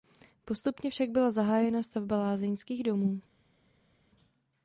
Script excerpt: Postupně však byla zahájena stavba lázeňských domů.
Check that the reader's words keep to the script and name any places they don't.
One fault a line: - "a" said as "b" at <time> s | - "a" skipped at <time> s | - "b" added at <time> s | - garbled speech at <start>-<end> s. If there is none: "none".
none